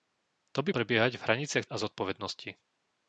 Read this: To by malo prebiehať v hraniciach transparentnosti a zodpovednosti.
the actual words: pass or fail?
fail